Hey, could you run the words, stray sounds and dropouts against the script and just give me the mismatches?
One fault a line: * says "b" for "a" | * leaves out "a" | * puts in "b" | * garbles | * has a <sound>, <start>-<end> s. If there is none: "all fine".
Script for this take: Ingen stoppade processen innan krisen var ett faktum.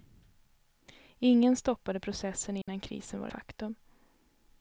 * has a dropout, 2.6-2.7 s
* leaves out "ett"